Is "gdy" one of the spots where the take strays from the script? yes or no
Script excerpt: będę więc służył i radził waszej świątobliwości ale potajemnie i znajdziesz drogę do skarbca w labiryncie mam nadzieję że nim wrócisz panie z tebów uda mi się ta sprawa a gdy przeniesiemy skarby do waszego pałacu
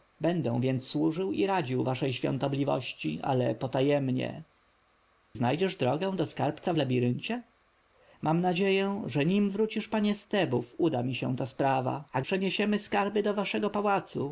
yes